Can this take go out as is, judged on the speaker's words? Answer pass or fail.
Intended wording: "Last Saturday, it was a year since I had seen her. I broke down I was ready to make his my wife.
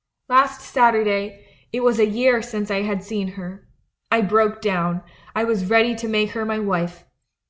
fail